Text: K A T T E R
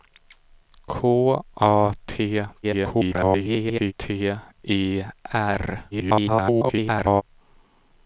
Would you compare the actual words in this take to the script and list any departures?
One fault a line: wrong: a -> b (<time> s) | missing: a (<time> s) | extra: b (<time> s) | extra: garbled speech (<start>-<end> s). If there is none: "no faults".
extra: garbled speech (2.6-3.9 s)
extra: garbled speech (5.9-7.2 s)